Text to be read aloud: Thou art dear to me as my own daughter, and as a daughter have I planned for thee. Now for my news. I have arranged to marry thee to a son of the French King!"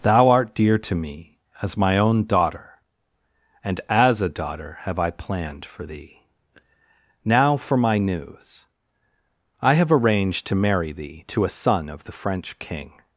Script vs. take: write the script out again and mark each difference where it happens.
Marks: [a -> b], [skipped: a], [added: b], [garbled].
Thou art dear to me as my own daughter, and as a daughter have I planned for thee. Now for my news. I have arranged to marry thee to a son of the French King!"